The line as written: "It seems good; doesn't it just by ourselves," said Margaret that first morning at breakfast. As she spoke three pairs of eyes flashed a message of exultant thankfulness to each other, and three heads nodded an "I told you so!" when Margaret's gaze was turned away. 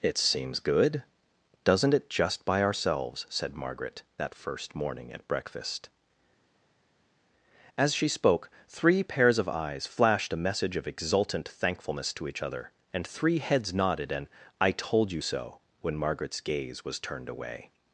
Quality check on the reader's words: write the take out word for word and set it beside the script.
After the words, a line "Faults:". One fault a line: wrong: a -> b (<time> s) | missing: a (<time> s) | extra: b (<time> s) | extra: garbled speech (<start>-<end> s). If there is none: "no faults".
"It seems good; doesn't it just by ourselves," said Margaret that first morning at breakfast. As she spoke three pairs of eyes flashed a message of exultant thankfulness to each other, and three heads nodded an "I told you so!" when Margaret's gaze was turned away.
Faults:
no faults